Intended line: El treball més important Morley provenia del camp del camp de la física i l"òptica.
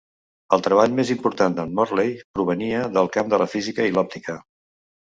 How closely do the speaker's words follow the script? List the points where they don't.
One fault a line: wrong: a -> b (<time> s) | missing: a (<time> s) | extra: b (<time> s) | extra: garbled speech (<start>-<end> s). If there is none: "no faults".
extra: de"n (1.6 s)
missing: del camp (3.4 s)